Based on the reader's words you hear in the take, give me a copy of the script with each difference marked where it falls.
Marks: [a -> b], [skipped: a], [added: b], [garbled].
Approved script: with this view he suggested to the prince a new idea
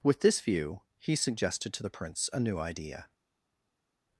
with this view he suggested to the prince a new idea